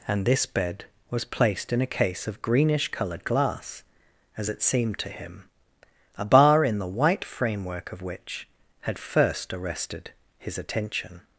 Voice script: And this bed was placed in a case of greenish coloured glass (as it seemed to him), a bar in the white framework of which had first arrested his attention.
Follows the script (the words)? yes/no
yes